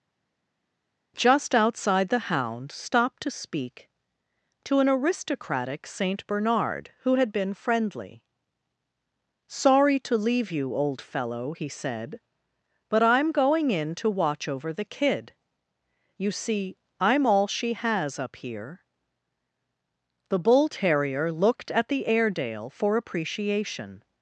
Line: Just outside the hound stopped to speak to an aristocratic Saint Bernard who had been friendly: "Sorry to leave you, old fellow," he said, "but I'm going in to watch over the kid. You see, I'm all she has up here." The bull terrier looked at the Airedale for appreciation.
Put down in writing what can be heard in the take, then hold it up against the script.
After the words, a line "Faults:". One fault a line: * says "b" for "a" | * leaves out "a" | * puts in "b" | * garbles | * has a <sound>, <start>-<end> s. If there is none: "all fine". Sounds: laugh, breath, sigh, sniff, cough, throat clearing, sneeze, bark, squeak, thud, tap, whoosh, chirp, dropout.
Just outside the hound stopped to speak to an aristocratic Saint Bernard who had been friendly: "Sorry to leave you, old fellow," he said, "but I'm going in to watch over the kid. You see, I'm all she has up here." The bull terrier looked at the Airedale for appreciation.
Faults:
all fine